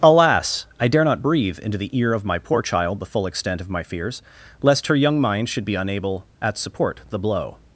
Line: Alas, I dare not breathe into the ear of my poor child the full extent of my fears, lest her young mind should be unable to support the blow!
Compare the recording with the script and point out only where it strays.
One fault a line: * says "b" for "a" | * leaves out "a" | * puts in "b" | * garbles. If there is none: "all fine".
* says "at" for "to"